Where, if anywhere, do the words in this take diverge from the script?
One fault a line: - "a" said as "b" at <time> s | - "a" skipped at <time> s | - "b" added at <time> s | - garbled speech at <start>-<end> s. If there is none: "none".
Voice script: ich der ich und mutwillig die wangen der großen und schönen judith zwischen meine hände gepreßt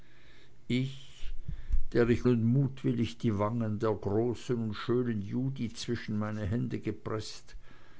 none